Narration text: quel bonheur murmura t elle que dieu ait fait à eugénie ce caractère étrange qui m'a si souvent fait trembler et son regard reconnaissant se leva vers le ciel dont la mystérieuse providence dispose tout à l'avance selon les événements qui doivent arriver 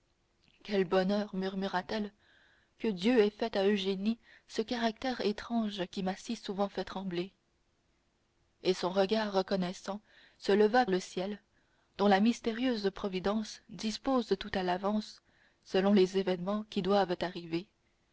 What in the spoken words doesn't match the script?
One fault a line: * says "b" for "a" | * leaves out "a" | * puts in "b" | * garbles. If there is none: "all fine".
* leaves out "vers"